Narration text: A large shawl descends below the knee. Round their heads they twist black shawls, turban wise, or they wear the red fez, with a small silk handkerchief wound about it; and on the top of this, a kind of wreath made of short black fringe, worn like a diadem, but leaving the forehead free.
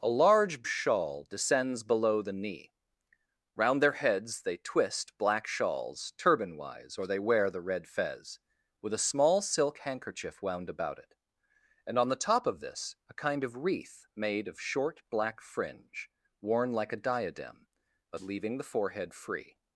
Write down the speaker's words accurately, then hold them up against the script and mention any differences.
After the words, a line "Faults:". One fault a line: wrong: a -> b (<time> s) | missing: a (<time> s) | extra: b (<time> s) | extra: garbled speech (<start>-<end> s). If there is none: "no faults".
A large shawl descends below the knee. Round their heads they twist black shawls, turban wise, or they wear the red fez, with a small silk handkerchief wound about it; and on the top of this, a kind of wreath made of short black fringe, worn like a diadem, but leaving the forehead free.
Faults:
no faults